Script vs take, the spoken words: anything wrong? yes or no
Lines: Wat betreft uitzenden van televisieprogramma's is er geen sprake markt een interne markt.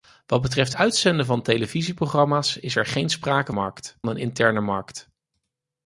no